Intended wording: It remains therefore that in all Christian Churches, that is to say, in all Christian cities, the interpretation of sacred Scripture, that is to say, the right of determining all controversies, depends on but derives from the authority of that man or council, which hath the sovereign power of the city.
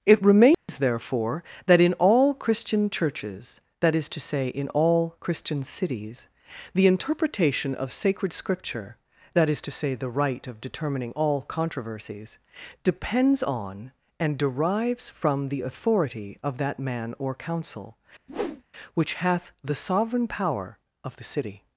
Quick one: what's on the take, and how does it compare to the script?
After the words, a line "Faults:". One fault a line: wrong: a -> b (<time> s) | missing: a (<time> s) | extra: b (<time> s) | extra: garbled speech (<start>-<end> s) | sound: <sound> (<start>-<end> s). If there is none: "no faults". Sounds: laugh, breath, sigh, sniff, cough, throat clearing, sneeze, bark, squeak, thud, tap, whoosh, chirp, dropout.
It remains therefore that in all Christian Churches, that is to say, in all Christian cities, the interpretation of sacred Scripture, that is to say, the right of determining all controversies, depends on and derives from the authority of that man or council, which hath the sovereign power of the city.
Faults:
sound: dropout (0.5-0.7 s)
wrong: but -> and (14.2 s)
sound: whoosh (18.3-18.6 s)